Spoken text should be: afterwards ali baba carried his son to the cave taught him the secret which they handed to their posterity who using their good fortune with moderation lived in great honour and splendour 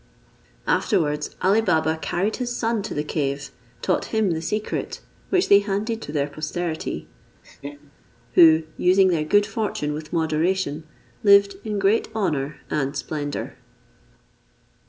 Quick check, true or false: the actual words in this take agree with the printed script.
true